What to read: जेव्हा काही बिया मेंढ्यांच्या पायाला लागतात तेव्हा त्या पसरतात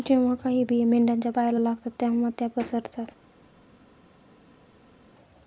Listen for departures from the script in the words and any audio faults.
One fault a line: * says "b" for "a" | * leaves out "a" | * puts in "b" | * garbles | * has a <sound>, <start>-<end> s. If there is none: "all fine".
all fine